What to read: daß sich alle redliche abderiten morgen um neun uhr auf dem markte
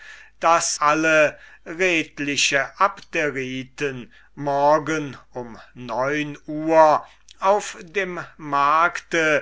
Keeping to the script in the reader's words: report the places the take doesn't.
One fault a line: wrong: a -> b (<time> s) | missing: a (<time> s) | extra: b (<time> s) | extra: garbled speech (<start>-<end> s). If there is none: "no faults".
missing: sich (0.8 s)